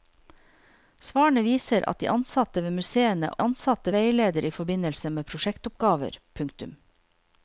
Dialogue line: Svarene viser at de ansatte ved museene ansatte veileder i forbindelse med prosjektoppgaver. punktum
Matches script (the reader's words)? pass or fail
pass